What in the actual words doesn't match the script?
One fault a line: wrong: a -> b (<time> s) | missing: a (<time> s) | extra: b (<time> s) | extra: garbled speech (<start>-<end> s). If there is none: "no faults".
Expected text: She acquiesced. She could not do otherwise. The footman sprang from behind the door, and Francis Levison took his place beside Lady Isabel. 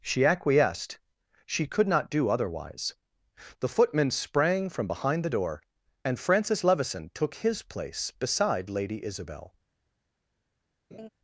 no faults